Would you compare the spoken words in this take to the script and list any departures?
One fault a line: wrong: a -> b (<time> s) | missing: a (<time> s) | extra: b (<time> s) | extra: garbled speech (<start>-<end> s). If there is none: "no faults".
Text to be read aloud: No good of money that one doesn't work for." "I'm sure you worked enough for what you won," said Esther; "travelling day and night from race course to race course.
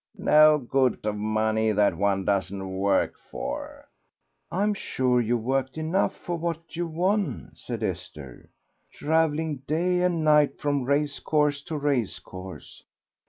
no faults